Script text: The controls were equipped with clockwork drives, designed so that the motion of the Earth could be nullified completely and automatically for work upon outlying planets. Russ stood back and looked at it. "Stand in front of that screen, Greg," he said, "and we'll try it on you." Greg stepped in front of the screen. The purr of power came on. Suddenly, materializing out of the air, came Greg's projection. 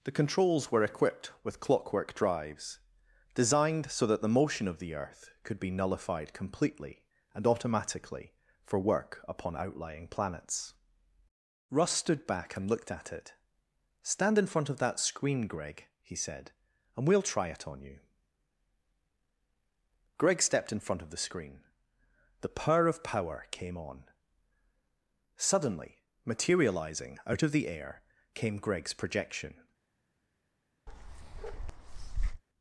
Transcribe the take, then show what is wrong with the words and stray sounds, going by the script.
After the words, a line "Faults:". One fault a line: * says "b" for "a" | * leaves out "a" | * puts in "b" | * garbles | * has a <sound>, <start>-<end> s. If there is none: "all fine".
The controls were equipped with clockwork drives, designed so that the motion of the Earth could be nullified completely and automatically for work upon outlying planets. Russ stood back and looked at it. "Stand in front of that screen, Greg," he said, "and we'll try it on you." Greg stepped in front of the screen. The purr of power came on. Suddenly, materializing out of the air, came Greg's projection.
Faults:
* has a bark, 30.9-32.4 s